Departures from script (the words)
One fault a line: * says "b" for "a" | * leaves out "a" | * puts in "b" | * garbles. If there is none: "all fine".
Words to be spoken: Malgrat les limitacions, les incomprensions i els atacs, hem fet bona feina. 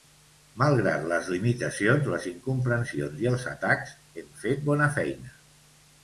all fine